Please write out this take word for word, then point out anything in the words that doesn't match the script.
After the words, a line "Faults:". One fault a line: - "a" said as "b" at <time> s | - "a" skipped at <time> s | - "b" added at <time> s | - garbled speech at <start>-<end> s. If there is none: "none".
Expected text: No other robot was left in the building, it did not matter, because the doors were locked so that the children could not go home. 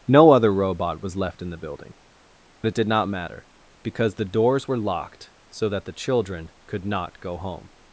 No other robot was left in the building, it did not matter, because the doors were locked so that the children could not go home.
Faults:
none